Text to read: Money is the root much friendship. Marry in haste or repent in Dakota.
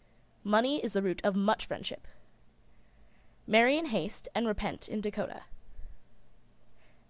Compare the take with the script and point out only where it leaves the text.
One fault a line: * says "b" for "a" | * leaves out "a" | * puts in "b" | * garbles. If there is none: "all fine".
* puts in "of"
* says "and" for "or"